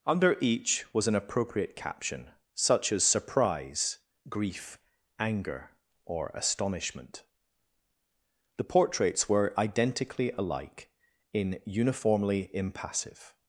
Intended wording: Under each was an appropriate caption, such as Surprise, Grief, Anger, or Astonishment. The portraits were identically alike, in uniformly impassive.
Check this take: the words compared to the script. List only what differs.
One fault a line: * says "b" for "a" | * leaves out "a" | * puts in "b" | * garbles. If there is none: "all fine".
all fine